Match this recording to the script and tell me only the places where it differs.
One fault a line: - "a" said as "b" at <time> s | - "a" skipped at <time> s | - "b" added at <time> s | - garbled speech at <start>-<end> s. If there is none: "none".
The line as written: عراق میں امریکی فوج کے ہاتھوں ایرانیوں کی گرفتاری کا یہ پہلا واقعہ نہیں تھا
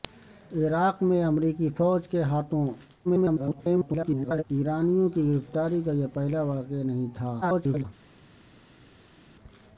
- garbled speech at 3.0-4.4 s
- garbled speech at 7.4-7.8 s